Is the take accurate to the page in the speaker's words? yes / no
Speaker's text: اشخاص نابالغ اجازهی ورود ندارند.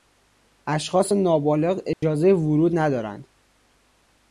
yes